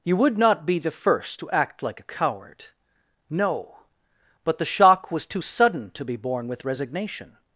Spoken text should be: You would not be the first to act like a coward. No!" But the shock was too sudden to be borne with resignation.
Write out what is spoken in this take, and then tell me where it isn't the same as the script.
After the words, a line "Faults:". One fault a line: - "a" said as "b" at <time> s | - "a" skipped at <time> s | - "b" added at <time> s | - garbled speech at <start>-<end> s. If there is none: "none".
You would not be the first to act like a coward. No!" But the shock was too sudden to be borne with resignation.
Faults:
none